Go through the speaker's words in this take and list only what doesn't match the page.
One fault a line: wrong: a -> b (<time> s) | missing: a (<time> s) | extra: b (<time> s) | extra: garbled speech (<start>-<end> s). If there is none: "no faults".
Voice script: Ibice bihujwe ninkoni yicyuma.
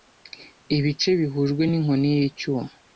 no faults